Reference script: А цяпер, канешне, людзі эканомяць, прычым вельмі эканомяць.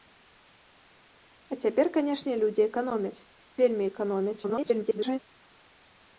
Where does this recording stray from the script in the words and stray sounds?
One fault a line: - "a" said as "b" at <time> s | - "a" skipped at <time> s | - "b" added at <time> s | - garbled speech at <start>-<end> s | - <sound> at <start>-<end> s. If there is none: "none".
- "прычым" skipped at 3.2 s
- garbled speech at 4.4-5.2 s